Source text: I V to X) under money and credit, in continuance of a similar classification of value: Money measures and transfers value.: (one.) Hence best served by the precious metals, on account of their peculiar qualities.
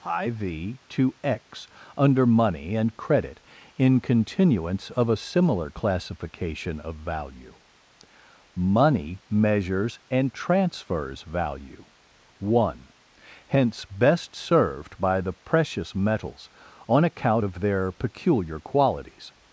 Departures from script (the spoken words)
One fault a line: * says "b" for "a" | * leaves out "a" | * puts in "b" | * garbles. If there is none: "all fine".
all fine